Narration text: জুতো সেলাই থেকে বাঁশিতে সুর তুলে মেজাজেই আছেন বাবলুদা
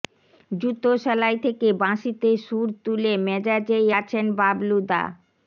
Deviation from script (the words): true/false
false